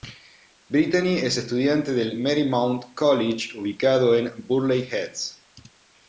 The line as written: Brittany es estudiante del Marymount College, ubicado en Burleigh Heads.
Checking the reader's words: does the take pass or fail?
pass